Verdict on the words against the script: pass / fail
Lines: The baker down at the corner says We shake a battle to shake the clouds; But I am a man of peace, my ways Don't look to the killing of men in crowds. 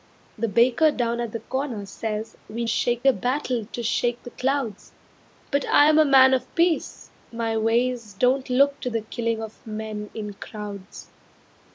pass